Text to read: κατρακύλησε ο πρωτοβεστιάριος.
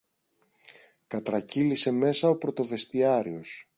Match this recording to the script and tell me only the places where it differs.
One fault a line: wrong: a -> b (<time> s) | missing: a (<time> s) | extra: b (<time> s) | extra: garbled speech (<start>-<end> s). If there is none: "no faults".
extra: μέσα (1.9 s)